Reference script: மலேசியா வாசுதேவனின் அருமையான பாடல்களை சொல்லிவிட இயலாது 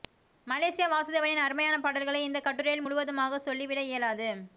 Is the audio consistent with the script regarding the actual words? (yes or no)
no